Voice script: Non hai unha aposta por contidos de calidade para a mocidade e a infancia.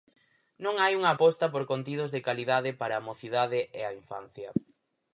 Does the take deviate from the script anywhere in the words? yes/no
no